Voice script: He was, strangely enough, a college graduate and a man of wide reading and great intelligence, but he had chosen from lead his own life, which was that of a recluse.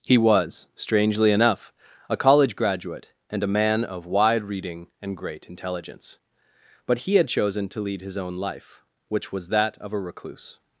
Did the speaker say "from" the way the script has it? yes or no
no